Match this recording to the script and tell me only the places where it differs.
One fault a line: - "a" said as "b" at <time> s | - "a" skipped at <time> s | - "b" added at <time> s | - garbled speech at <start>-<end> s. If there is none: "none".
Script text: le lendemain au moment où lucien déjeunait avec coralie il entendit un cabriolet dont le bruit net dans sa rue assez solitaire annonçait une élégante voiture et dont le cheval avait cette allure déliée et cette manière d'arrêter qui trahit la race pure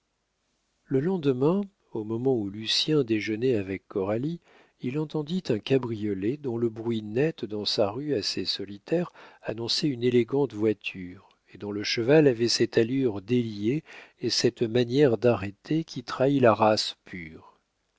none